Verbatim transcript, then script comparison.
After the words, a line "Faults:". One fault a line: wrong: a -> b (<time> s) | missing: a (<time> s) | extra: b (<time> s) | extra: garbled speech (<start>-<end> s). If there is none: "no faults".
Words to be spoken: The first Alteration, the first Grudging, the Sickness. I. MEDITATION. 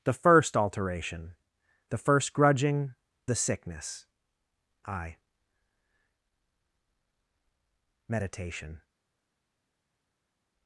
The first Alteration, the first Grudging, the Sickness. I. MEDITATION.
Faults:
no faults